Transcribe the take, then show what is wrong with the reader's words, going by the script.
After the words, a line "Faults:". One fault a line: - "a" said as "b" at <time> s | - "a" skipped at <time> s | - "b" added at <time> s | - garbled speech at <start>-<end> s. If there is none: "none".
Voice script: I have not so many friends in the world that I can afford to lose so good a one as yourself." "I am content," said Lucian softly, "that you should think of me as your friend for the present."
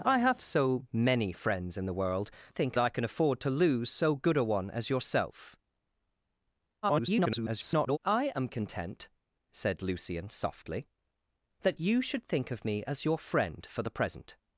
I have so many friends in the world think I can afford to lose so good a one as yourself." [garbled] "I am content," said Lucian softly, "that you should think of me as your friend for the present."
Faults:
- "not" skipped at 0.4 s
- "that" said as "think" at 2.5 s
- garbled speech at 6.8-8.0 s